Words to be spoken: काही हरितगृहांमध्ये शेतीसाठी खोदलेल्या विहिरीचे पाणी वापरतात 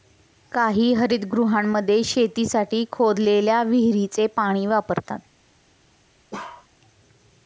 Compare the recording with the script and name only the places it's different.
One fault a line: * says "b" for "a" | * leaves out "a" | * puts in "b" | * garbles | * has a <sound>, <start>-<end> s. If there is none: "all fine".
* has a bark, 6.3-6.7 s